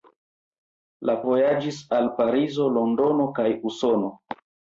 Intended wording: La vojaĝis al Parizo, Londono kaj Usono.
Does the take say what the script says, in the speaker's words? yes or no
yes